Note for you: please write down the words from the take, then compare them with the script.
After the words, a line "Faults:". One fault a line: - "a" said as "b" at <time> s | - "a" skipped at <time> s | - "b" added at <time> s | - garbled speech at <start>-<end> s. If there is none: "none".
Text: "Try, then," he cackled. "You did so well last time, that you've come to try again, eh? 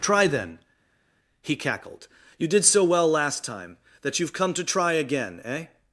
"Try, then," he cackled. "You did so well last time, that you've come to try again, eh?
Faults:
none